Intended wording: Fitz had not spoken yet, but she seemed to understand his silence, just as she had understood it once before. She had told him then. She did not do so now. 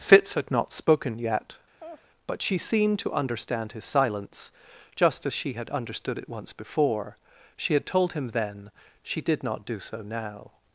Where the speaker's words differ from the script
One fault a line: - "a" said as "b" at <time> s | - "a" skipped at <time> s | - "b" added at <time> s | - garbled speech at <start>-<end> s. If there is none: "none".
none